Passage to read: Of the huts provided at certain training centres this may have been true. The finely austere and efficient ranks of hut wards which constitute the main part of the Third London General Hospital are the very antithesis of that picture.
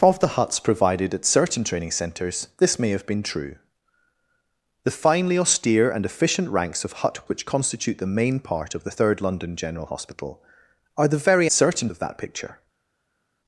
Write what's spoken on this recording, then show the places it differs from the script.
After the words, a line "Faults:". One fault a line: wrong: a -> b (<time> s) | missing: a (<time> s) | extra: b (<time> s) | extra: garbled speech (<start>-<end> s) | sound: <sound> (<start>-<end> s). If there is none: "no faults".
Of the huts provided at certain training centres this may have been true. The finely austere and efficient ranks of hut which constitute the main part of the Third London General Hospital are the very certain of that picture.
Faults:
missing: wards (7.3 s)
wrong: antithesis -> certain (11.5 s)